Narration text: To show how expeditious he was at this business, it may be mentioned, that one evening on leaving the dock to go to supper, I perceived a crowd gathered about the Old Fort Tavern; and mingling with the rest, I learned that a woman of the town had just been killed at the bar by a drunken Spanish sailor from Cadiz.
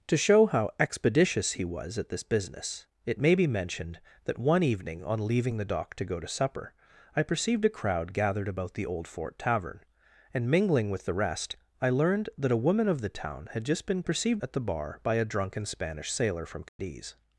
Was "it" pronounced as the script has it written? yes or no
yes